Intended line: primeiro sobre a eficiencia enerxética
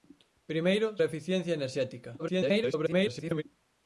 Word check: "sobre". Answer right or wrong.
wrong